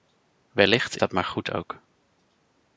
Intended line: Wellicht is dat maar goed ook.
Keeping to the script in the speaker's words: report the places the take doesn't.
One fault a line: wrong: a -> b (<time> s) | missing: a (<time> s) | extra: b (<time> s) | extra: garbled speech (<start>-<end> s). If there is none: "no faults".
missing: is (1.0 s)